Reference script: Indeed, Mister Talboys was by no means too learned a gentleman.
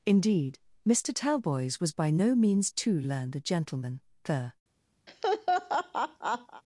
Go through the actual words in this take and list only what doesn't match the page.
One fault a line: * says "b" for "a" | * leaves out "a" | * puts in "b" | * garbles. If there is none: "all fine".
* puts in "The"